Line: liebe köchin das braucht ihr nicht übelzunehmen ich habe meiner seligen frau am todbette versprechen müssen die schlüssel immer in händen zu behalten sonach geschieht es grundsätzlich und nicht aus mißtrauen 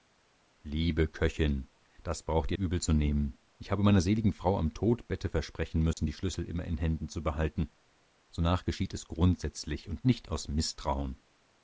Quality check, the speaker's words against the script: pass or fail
fail